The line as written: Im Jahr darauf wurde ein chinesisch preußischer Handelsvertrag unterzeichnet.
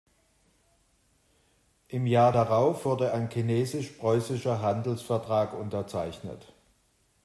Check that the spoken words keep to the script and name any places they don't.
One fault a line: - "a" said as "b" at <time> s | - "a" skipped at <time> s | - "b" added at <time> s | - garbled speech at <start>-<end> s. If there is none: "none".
none